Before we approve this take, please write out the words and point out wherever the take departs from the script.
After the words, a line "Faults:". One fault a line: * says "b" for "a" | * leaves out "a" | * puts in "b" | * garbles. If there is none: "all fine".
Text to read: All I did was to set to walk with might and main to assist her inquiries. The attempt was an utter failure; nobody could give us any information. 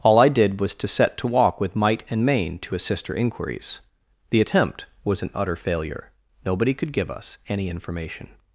All I did was to set to walk with might and main to assist her inquiries. The attempt was an utter failure; nobody could give us any information.
Faults:
all fine